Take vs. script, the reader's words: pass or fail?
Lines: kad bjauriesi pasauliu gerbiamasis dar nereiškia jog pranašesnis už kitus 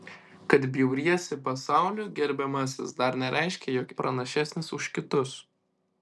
pass